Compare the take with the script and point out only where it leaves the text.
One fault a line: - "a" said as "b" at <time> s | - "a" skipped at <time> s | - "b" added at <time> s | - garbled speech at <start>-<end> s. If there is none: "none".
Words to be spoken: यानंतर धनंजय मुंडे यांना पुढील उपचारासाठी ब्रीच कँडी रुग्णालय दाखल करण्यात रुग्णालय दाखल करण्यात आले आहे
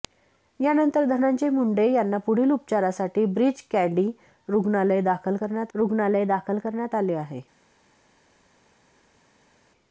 none